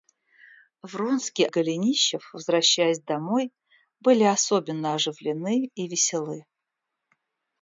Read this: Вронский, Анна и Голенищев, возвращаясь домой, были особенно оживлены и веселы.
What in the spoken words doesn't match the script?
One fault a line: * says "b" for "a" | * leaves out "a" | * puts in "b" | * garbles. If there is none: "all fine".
* leaves out "Анна"